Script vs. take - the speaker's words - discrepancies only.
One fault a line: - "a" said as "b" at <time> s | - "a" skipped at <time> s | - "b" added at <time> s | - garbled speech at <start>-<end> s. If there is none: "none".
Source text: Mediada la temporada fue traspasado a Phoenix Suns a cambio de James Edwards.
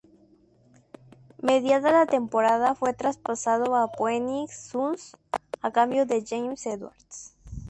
none